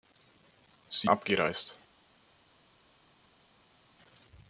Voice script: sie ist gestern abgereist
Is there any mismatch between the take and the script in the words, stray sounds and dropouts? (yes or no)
yes